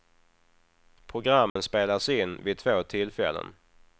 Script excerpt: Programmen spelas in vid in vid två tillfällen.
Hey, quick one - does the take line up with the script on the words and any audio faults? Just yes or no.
no